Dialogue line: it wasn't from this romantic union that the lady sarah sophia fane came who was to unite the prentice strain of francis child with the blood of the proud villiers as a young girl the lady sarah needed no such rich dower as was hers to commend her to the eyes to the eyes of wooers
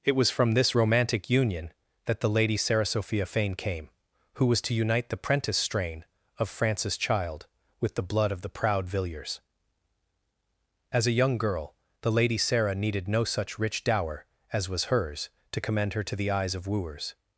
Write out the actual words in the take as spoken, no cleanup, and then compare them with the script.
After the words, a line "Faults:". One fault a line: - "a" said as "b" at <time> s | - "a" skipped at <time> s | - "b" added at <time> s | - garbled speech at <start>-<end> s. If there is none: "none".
it was from this romantic union that the lady sarah sophia fane came who was to unite the prentice strain of francis child with the blood of the proud villiers as a young girl the lady sarah needed no such rich dower as was hers to commend her to the eyes of wooers
Faults:
- "wasn't" said as "was" at 0.1 s
- "to the eyes" skipped at 16.5 s